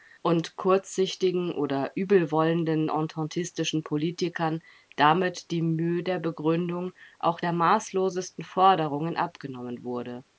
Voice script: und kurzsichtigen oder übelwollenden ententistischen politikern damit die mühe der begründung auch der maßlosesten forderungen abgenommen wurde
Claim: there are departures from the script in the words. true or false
false